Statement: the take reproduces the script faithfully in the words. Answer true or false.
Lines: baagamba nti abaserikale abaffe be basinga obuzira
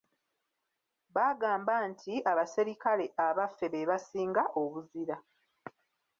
true